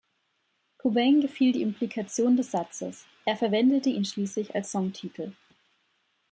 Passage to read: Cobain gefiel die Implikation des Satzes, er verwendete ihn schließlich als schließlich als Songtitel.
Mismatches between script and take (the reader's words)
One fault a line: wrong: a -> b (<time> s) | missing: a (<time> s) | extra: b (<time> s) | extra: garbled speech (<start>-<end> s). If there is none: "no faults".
missing: schließlich als (4.7 s)